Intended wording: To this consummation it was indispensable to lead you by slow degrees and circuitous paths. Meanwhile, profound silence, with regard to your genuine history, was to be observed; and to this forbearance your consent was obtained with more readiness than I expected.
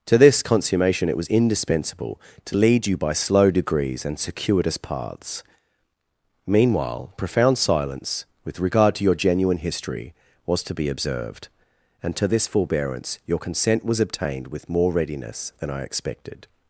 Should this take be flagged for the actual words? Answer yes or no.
no